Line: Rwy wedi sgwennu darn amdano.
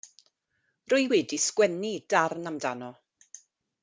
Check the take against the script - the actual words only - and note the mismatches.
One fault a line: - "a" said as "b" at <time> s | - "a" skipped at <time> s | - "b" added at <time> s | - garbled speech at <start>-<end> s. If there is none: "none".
none